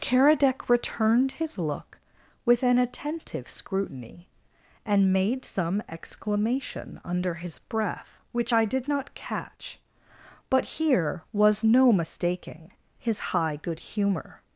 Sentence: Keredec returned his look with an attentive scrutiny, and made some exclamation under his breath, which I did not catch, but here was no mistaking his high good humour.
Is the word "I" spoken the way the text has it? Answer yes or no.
yes